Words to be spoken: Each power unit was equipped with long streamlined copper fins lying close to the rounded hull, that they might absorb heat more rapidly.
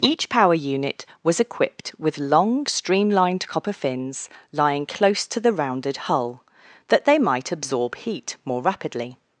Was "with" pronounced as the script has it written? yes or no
yes